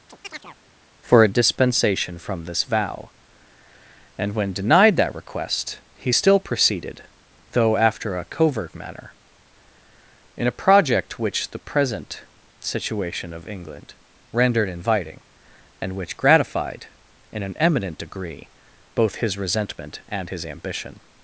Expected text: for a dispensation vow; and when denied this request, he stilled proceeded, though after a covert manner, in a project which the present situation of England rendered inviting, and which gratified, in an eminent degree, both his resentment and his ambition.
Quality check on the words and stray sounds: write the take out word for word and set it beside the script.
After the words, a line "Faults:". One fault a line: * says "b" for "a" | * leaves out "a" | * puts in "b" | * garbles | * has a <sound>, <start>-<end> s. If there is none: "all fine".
for a dispensation from this vow; and when denied that request, he still proceeded, though after a covert manner, in a project which the present situation of England rendered inviting, and which gratified, in an eminent degree, both his resentment and his ambition.
Faults:
* has a chirp, 0.1-0.6 s
* puts in "from this"
* says "that" for "this"
* says "still" for "stilled"